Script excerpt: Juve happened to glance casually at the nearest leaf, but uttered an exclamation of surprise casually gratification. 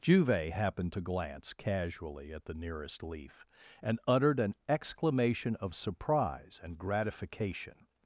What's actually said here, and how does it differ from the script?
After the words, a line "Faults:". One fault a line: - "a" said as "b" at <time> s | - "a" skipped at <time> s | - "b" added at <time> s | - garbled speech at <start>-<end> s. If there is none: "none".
Juve happened to glance casually at the nearest leaf, and uttered an exclamation of surprise and gratification.
Faults:
- "but" said as "and" at 3.8 s
- "casually" said as "and" at 6.6 s